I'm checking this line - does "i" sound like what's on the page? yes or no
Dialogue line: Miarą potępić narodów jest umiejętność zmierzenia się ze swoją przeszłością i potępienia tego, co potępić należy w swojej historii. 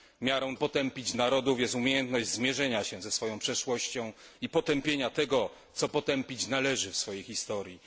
yes